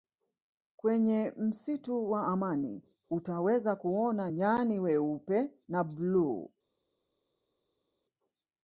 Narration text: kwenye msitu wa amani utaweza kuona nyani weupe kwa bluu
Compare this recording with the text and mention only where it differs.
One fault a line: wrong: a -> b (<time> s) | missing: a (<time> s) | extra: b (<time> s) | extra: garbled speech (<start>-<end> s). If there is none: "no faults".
wrong: kwa -> na (5.7 s)